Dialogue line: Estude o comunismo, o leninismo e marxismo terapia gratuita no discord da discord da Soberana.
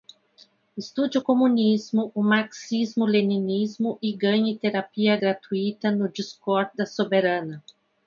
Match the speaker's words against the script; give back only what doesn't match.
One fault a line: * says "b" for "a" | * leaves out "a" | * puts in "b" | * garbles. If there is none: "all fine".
* puts in "marxismo"
* says "ganhe" for "marxismo"
* leaves out "discord da"